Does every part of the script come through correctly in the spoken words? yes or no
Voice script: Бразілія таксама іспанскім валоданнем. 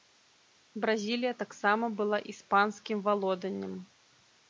no